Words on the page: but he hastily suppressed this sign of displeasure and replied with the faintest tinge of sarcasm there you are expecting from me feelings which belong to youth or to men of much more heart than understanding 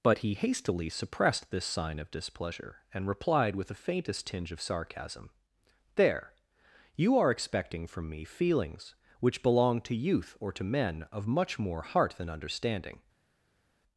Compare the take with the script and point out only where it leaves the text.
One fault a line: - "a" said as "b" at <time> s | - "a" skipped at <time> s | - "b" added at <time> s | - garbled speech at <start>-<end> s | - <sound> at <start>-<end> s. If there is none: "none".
none